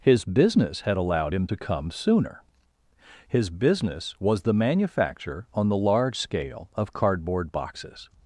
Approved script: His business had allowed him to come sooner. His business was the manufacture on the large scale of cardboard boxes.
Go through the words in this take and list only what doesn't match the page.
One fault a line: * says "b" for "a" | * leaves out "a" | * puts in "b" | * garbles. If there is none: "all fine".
all fine